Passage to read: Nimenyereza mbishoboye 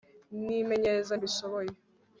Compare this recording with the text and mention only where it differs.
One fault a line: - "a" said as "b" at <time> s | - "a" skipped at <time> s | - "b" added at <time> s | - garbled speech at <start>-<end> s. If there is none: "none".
none